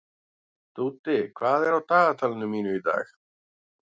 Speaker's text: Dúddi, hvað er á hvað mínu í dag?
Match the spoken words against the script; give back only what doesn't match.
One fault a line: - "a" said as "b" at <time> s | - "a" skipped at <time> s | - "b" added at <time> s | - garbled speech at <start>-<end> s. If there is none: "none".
- "hvað" said as "dagatalinu" at 1.9 s